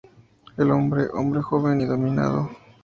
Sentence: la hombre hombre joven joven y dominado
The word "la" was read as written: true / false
false